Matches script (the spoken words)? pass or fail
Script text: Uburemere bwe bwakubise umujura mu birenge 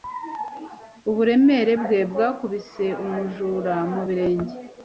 pass